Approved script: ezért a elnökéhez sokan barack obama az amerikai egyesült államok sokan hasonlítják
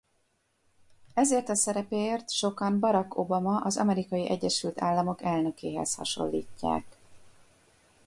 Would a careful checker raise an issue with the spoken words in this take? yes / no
yes